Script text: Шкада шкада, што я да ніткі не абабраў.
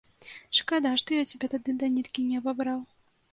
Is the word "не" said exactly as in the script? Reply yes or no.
yes